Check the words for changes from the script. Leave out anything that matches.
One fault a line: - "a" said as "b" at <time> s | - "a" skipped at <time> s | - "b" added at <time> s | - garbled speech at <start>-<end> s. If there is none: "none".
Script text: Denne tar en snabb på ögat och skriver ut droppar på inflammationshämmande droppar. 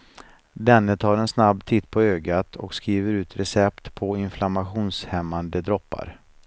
- "titt" added at 1.6 s
- "droppar" said as "recept" at 3.4 s